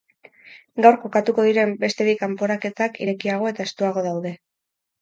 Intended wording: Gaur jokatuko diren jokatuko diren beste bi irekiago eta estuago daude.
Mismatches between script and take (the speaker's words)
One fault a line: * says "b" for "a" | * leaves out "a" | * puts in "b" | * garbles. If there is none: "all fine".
* leaves out "jokatuko diren"
* puts in "kanporaketak"